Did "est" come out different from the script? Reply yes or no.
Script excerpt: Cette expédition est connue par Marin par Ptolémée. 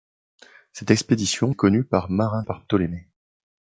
no